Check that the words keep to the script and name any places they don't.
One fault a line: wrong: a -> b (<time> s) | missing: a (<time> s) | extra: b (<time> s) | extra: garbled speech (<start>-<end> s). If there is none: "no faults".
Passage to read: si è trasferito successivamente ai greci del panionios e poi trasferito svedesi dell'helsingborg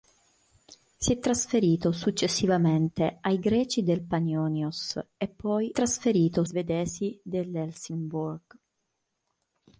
no faults